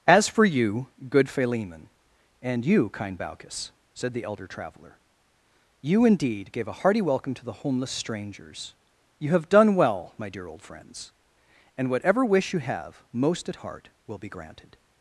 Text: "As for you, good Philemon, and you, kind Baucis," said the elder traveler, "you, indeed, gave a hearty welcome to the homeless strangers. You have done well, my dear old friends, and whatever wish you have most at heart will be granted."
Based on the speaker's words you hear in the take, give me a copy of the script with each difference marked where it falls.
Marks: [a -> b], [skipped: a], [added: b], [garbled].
"As for you, good Philemon, and you, kind Baucis," said the elder traveler, "you, indeed, gave a hearty welcome to the homeless strangers. You have done well, my dear old friends, and whatever wish you have most at heart will be granted."